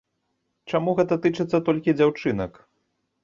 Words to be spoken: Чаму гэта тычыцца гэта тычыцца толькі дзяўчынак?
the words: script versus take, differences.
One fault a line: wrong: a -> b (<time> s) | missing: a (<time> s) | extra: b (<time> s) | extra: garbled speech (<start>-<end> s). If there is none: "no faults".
missing: гэта тычыцца (1.6 s)